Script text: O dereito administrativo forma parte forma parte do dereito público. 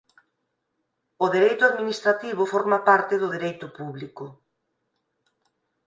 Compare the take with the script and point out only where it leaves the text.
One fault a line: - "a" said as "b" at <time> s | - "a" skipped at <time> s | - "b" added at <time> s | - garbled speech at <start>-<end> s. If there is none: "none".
- "forma parte" skipped at 3.1 s